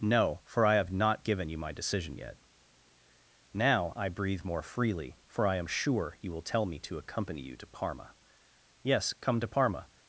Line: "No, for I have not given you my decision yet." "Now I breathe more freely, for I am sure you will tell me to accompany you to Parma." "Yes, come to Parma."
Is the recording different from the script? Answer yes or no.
no